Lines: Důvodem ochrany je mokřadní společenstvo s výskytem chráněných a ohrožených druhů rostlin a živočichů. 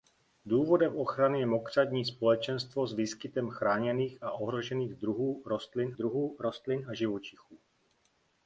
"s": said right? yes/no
yes